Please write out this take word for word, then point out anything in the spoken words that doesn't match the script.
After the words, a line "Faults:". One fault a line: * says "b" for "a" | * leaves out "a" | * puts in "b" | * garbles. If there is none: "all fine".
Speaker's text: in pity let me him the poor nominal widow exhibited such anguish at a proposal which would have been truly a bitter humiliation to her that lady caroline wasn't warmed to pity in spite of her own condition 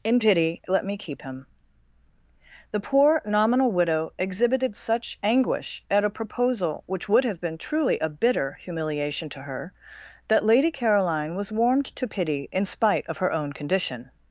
in pity let me keep him the poor nominal widow exhibited such anguish at a proposal which would have been truly a bitter humiliation to her that lady caroline was warmed to pity in spite of her own condition
Faults:
* puts in "keep"
* says "was" for "wasn't"